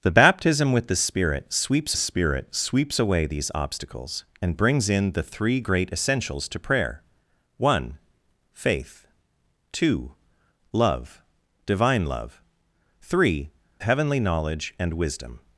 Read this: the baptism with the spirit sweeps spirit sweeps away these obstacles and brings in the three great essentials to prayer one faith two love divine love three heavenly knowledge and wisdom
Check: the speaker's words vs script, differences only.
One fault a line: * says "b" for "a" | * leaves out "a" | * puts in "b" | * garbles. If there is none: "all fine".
all fine